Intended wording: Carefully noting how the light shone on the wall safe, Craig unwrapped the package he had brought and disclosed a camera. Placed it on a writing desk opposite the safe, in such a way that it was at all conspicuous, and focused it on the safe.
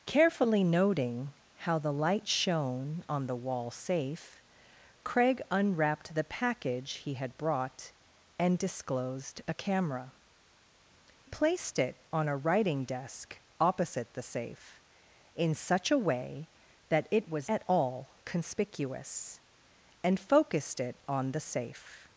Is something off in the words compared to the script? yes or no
no